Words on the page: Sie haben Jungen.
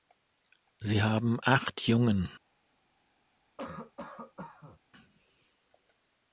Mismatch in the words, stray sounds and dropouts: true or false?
true